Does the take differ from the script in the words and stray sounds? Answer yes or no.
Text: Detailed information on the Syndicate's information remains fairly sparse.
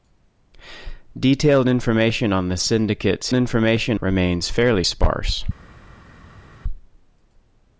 no